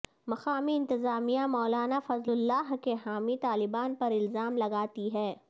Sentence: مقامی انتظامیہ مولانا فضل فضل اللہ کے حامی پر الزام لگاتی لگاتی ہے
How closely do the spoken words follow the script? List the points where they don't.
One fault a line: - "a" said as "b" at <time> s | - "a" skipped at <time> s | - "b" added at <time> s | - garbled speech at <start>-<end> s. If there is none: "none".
- "فضل" skipped at 2.3 s
- "طالبان" added at 3.4 s
- "لگاتی" skipped at 5.1 s